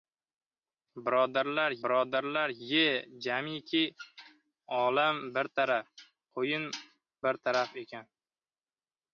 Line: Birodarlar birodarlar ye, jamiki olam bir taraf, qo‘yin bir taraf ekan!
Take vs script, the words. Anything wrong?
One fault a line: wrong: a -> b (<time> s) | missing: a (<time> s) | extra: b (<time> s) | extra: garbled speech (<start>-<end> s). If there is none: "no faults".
no faults